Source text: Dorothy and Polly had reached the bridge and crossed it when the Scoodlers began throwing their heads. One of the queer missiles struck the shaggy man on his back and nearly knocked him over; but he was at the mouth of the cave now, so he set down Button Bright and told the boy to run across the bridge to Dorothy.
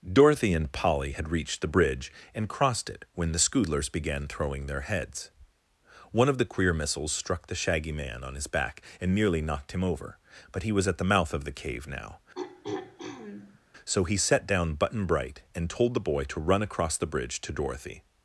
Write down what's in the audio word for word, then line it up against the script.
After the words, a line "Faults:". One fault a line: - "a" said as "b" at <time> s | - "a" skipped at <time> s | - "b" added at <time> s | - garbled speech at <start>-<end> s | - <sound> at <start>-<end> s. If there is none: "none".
Dorothy and Polly had reached the bridge and crossed it when the Scoodlers began throwing their heads. One of the queer missiles struck the shaggy man on his back and nearly knocked him over; but he was at the mouth of the cave now, so he set down Button Bright and told the boy to run across the bridge to Dorothy.
Faults:
- throat clearing at 12.4-13.6 s